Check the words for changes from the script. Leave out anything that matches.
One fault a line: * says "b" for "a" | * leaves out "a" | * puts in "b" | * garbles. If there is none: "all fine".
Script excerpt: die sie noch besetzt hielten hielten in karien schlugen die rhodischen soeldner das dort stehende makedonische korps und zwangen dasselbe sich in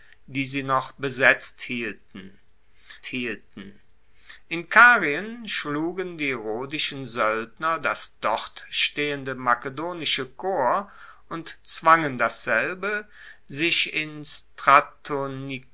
all fine